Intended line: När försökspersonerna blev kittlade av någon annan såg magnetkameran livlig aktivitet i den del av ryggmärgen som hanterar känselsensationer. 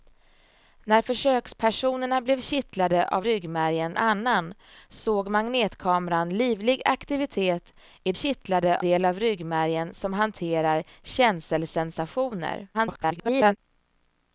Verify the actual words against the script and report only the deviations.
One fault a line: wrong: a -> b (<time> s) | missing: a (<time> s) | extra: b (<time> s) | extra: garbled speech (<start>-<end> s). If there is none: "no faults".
wrong: någon -> ryggmärgen (3.2 s)
wrong: den -> kittlade (8.1 s)
extra: garbled speech (12.7-13.6 s)